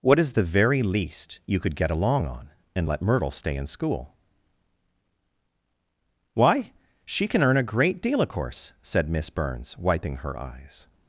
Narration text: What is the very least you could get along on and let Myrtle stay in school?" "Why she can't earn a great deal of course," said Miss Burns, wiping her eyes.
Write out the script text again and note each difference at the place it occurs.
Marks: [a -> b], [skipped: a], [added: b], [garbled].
What is the very least you could get along on and let Myrtle stay in school?" "Why she [can't -> can] earn a great deal of course," said Miss Burns, wiping her eyes.